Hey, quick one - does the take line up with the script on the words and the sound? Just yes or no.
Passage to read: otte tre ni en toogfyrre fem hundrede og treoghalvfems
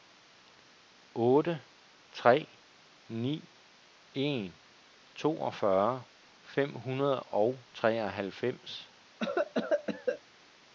no